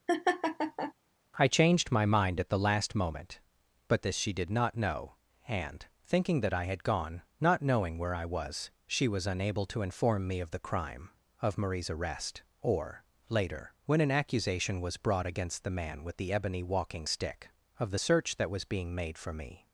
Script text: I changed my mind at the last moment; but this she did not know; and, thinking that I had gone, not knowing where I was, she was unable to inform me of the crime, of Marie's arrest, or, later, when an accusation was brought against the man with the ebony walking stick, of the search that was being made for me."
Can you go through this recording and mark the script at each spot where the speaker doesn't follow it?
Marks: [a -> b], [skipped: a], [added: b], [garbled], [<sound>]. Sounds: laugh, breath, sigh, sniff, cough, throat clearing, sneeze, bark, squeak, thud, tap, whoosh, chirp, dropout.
[laugh] I changed my mind at the last moment; but this she did not know; and, thinking that I had gone, not knowing where I was, she was unable to inform me of the crime, of Marie's arrest, or, later, when an accusation was brought against the man with the ebony walking stick, of the search that was being made for me."